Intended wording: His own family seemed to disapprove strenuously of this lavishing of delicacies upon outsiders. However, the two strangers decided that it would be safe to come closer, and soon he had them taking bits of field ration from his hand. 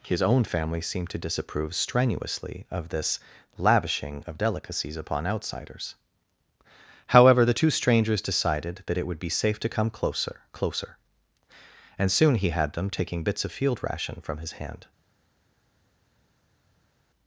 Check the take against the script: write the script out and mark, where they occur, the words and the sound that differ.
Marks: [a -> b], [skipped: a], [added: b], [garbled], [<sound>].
His own family seemed to disapprove strenuously of this lavishing of delicacies upon outsiders. However, the two strangers decided that it would be safe to come closer, [added: closer] and soon he had them taking bits of field ration from his hand.